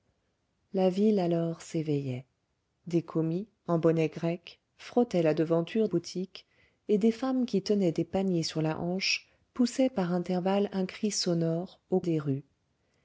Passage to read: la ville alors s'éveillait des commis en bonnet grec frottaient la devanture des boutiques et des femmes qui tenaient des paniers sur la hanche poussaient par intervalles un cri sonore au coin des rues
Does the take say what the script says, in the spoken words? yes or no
no